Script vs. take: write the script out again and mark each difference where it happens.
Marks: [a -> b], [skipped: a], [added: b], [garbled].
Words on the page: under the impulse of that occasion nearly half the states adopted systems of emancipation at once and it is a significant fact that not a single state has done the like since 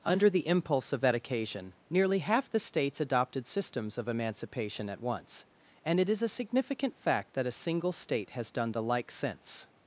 under the impulse of that occasion nearly half the states adopted systems of emancipation at once and it is a significant fact that [skipped: not] a single state has done the like since